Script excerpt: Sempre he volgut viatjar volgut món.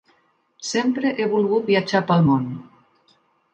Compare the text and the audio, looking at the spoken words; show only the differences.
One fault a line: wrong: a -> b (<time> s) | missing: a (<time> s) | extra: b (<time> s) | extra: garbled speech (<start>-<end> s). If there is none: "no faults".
wrong: volgut -> pel (2.1 s)